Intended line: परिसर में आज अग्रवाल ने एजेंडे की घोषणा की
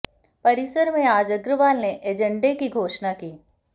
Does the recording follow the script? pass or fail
pass